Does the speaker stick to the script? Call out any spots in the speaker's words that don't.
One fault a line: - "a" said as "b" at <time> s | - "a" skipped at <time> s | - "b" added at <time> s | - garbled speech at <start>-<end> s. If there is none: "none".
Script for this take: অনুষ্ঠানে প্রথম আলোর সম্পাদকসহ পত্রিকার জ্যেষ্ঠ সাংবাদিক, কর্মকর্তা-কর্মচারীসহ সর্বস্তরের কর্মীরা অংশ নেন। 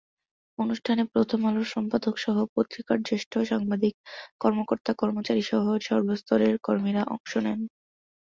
none